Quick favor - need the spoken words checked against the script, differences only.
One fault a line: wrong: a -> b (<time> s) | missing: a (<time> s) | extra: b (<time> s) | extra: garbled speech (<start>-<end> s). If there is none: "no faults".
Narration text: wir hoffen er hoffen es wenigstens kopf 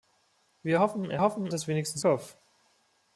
no faults